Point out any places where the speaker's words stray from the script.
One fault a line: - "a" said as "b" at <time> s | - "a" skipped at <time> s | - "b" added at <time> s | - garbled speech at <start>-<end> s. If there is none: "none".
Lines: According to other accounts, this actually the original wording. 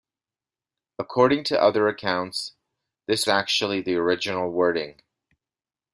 none